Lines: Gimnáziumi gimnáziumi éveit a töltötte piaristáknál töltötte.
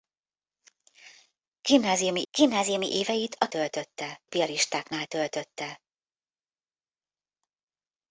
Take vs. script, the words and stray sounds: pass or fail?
pass